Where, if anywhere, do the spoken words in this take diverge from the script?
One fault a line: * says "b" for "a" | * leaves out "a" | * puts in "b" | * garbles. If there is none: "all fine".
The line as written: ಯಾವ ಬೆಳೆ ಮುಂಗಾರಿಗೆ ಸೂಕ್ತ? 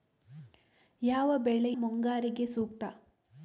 all fine